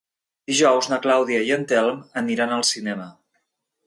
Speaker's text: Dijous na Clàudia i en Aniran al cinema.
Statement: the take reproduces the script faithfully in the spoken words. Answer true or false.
false